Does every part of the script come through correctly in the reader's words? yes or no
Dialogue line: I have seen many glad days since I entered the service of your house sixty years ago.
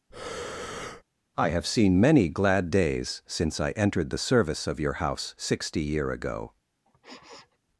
no